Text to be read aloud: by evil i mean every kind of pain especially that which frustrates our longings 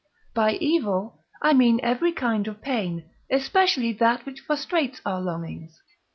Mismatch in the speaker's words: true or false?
false